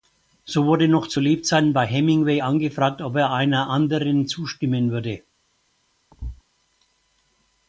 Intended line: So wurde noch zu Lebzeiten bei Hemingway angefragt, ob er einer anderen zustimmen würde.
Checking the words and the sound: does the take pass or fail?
fail